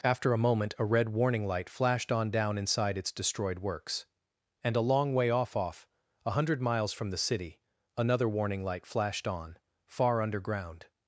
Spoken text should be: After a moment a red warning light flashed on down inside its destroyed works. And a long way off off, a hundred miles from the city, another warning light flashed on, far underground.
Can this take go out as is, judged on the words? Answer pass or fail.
pass